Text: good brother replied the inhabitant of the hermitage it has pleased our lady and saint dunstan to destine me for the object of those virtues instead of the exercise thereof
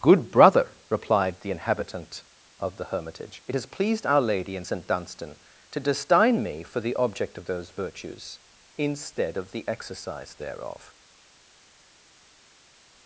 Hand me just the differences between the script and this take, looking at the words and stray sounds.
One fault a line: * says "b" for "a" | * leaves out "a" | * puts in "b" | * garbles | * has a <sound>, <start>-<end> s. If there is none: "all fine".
all fine